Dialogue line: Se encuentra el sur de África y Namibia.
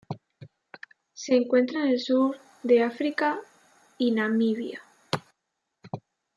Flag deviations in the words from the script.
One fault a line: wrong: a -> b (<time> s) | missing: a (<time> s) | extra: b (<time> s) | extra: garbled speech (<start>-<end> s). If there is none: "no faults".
extra: en (1.8 s)